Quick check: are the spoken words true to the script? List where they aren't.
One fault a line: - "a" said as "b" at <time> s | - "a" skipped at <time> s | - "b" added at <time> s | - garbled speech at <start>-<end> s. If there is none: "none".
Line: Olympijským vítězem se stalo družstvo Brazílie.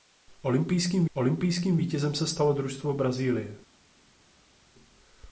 - "olympijským" added at 1.1 s